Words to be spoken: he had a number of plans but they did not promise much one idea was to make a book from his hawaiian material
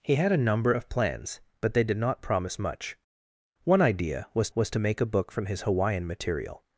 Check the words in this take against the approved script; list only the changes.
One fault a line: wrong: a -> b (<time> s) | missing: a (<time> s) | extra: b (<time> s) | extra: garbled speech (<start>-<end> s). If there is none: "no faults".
extra: was (4.5 s)